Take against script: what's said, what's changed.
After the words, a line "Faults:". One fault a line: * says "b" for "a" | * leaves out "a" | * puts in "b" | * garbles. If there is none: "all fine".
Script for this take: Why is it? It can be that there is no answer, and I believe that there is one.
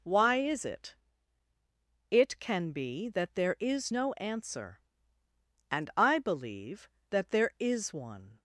Why is it? It can be that there is no answer, and I believe that there is one.
Faults:
all fine